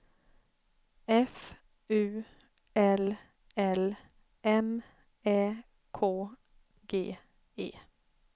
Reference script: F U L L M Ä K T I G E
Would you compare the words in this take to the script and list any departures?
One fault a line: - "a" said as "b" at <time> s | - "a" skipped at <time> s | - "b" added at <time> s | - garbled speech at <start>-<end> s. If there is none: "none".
- "T I" skipped at 6.0 s